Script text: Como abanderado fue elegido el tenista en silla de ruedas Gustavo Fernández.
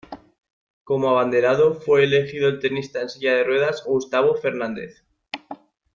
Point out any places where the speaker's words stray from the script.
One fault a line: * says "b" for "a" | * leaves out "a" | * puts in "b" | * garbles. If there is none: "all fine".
all fine